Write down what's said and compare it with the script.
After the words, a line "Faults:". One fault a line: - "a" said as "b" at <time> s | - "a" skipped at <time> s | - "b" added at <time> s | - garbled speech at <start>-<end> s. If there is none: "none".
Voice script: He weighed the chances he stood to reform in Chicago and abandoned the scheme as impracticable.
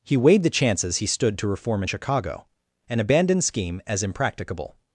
He weighed the chances he stood to reform in Chicago and abandoned scheme as impracticable.
Faults:
- "the" skipped at 3.4 s